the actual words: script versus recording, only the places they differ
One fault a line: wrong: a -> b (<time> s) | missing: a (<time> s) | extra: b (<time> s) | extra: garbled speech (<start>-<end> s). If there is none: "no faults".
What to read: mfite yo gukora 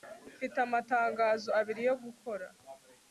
extra: amatangazo abiri (0.7 s)